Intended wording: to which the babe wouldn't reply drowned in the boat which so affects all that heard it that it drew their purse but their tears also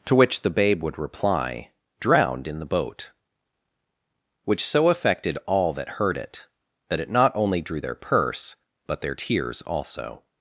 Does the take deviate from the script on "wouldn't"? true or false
true